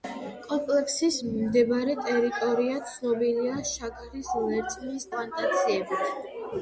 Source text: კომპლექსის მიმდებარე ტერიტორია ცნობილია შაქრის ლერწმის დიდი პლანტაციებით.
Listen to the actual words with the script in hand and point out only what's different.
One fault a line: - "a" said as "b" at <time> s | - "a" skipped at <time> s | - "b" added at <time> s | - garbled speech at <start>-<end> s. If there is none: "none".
- "დიდი" skipped at 5.1 s